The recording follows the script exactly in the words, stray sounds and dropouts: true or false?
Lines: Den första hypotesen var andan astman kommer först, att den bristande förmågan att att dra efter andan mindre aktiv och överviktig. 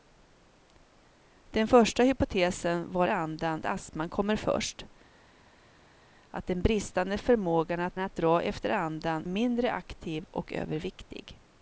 true